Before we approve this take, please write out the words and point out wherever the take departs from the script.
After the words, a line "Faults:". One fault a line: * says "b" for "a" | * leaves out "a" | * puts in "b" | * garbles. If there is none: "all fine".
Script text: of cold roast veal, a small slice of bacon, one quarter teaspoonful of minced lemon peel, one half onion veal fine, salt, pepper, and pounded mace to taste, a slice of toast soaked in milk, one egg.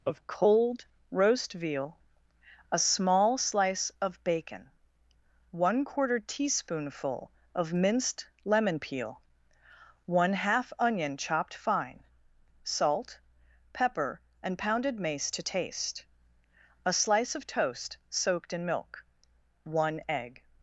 of cold roast veal, a small slice of bacon, one quarter teaspoonful of minced lemon peel, one half onion chopped fine, salt, pepper, and pounded mace to taste, a slice of toast soaked in milk, one egg.
Faults:
* says "chopped" for "veal"